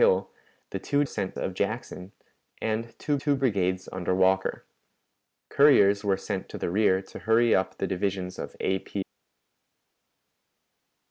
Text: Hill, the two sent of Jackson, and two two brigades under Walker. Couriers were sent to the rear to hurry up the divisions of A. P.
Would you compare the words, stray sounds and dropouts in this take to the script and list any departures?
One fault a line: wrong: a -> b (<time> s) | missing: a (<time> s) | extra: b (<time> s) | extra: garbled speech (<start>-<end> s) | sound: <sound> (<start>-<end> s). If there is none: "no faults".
no faults